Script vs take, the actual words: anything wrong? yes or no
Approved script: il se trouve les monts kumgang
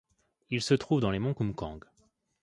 yes